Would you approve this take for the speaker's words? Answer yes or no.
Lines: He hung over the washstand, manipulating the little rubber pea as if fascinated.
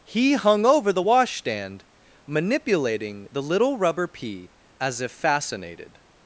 yes